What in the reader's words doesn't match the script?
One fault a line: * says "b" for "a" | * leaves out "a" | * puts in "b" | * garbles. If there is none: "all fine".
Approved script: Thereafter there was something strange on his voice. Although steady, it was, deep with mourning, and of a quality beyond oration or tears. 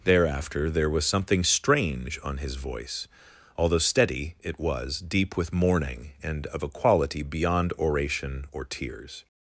all fine